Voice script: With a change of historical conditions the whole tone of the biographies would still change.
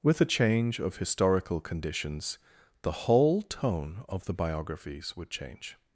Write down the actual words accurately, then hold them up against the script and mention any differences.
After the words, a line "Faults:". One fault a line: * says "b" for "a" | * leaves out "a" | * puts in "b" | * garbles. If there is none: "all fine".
With a change of historical conditions the whole tone of the biographies would change.
Faults:
* leaves out "still"